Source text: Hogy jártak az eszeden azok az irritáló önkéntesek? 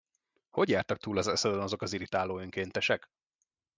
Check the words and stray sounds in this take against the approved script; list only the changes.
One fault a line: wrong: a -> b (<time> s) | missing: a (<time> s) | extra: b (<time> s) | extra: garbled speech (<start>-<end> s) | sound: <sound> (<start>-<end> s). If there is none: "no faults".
extra: túl (1.0 s)